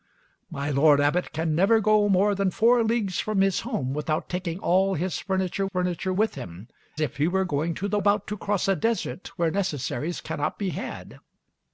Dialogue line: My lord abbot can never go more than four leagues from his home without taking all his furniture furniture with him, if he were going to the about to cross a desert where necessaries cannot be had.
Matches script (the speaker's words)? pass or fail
pass